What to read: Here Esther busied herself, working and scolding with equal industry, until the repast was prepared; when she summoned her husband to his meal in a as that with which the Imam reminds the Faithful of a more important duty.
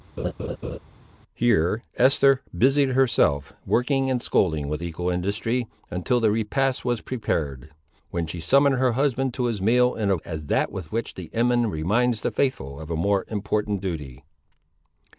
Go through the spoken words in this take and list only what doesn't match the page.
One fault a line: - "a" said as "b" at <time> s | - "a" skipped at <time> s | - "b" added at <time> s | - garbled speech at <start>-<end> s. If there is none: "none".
none